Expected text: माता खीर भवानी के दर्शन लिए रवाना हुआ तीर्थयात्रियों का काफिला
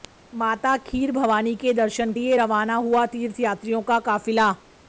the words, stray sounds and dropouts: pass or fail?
pass